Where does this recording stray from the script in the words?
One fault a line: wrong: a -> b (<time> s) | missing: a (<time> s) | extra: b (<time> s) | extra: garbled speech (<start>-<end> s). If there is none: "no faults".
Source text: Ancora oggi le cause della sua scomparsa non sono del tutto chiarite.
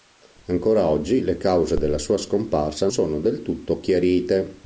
missing: non (2.9 s)